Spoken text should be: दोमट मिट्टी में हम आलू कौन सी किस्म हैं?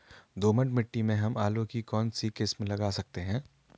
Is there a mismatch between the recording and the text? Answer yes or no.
yes